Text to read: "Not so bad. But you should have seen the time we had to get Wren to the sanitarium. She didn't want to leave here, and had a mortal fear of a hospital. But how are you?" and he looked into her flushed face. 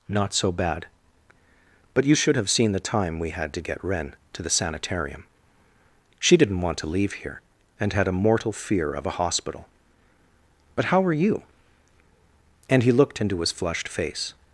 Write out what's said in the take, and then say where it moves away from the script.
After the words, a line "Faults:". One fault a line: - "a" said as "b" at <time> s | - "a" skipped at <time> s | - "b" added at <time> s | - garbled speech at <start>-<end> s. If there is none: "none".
"Not so bad. But you should have seen the time we had to get Wren to the sanitarium. She didn't want to leave here, and had a mortal fear of a hospital. But how are you?" and he looked into his flushed face.
Faults:
- "her" said as "his" at 13.4 s